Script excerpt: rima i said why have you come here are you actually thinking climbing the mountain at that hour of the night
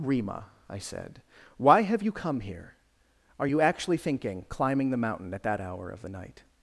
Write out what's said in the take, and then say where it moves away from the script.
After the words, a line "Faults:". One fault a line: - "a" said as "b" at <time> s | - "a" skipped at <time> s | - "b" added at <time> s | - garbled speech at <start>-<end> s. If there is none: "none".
rima i said why have you come here are you actually thinking climbing the mountain at that hour of the night
Faults:
none